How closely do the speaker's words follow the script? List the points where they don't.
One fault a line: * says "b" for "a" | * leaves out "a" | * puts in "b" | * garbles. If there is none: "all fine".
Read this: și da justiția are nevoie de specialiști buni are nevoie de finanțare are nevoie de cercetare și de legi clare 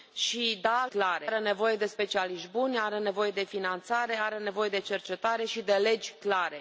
* says "clare" for "justiția"